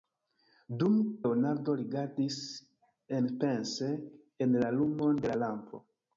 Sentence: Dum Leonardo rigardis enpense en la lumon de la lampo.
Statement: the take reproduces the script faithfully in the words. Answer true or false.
true